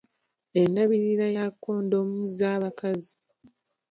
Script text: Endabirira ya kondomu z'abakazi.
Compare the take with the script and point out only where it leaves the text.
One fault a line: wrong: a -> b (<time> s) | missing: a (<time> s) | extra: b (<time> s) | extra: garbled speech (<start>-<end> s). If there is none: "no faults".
no faults